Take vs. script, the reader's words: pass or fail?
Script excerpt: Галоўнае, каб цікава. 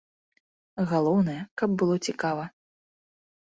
fail